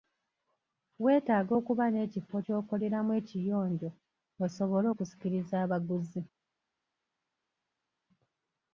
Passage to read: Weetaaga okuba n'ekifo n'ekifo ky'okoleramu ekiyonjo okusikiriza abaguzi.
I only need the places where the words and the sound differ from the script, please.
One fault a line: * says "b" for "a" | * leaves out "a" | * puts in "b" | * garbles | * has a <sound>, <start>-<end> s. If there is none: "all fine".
* leaves out "n'ekifo"
* puts in "osobole"